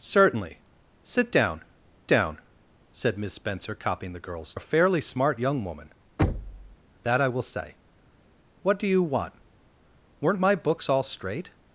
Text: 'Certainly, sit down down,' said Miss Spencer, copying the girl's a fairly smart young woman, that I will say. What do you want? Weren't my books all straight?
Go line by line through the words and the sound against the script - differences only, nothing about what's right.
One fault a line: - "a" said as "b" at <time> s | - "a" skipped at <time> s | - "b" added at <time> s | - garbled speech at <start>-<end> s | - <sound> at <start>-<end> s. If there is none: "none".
- thud at 6.2-6.8 s